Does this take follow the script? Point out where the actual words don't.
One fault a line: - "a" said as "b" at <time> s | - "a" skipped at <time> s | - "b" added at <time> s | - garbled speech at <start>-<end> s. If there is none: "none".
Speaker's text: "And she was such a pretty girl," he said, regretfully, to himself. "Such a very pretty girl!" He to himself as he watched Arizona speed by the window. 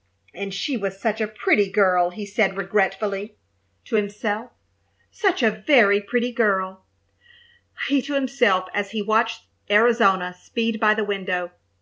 none